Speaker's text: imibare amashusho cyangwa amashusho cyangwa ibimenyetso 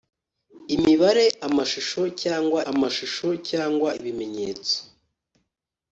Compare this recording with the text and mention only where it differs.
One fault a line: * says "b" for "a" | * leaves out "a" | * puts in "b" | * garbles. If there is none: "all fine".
all fine